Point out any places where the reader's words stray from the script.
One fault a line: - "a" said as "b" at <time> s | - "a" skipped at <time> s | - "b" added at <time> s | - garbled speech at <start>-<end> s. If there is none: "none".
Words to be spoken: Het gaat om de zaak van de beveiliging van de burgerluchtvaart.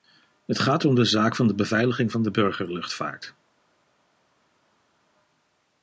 none